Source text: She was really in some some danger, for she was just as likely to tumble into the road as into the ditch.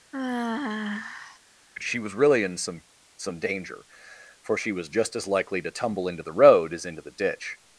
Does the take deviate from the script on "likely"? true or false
false